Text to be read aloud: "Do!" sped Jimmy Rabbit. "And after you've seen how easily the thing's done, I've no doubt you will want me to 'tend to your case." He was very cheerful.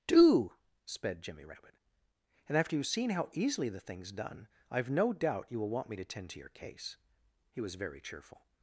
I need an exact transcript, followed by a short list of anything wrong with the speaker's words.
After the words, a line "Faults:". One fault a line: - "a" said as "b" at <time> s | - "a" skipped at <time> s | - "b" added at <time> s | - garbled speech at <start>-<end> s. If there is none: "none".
"Do!" sped Jimmy Rabbit. "And after you've seen how easily the thing's done, I've no doubt you will want me to 'tend to your case." He was very cheerful.
Faults:
none